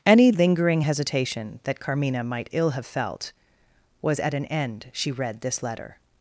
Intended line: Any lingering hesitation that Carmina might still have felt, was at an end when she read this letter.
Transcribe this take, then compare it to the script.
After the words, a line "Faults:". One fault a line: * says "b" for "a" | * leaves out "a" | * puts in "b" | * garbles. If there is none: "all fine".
Any lingering hesitation that Carmina might ill have felt, was at an end she read this letter.
Faults:
* says "ill" for "still"
* leaves out "when"